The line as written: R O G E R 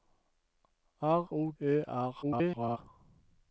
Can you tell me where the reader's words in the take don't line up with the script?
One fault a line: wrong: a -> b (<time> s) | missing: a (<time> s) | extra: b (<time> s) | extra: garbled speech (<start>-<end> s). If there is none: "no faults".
missing: G (1.5 s)
extra: garbled speech (2.2-2.8 s)